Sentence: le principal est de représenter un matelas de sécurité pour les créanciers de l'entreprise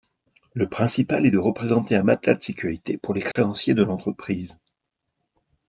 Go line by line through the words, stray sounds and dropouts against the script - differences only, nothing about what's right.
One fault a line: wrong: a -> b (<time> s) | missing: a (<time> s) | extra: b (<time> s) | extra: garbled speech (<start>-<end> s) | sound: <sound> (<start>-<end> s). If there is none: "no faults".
sound: dropout (3.3-3.4 s)